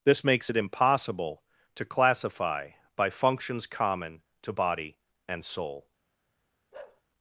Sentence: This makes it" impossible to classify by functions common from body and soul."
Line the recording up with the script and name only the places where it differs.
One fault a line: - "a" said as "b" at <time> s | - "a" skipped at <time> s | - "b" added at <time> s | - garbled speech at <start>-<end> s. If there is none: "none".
- "from" said as "to" at 4.4 s